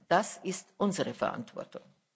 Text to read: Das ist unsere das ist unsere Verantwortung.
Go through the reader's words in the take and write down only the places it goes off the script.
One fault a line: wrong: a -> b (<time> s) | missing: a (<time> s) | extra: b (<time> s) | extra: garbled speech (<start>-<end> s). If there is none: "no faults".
missing: das ist unsere (1.1 s)